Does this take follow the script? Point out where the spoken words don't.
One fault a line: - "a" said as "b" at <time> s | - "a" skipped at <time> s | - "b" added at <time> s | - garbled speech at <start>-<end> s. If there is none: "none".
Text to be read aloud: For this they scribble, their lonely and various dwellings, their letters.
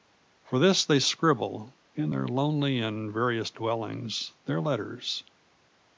- "in" added at 1.9 s